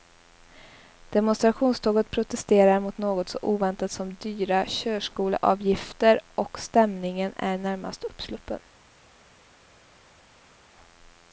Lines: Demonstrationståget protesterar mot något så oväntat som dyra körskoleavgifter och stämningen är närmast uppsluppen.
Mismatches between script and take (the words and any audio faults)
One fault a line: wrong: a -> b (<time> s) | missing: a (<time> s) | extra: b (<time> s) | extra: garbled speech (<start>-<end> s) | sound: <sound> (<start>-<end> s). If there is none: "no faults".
no faults